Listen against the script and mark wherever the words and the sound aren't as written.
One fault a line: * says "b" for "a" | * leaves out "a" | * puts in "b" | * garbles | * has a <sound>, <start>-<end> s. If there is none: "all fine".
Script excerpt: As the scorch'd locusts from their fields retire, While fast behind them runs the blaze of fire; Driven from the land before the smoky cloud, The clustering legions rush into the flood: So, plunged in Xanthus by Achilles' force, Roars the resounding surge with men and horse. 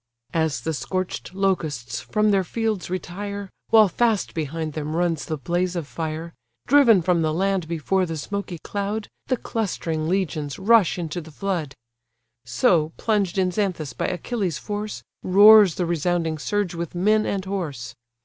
all fine